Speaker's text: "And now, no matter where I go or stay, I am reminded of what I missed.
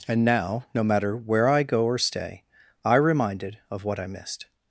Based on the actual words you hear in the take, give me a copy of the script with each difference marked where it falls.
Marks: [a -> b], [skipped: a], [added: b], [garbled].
"And now, no matter where I go or stay, I [skipped: am] reminded of what I missed.